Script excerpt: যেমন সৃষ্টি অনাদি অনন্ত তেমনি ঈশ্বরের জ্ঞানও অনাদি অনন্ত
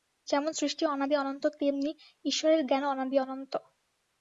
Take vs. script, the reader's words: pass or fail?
pass